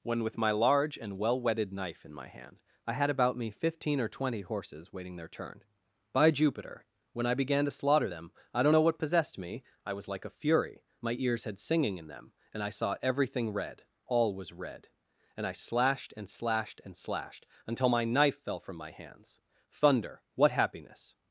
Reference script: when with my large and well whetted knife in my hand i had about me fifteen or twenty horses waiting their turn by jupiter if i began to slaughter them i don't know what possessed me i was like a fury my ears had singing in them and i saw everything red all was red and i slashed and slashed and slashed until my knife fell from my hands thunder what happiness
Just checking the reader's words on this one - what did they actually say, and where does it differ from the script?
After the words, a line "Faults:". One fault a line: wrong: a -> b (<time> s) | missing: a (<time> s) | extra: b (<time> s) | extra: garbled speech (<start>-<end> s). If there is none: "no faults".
when with my large and well whetted knife in my hand i had about me fifteen or twenty horses waiting their turn by jupiter when i began to slaughter them i don't know what possessed me i was like a fury my ears had singing in them and i saw everything red all was red and i slashed and slashed and slashed until my knife fell from my hands thunder what happiness
Faults:
wrong: if -> when (7.1 s)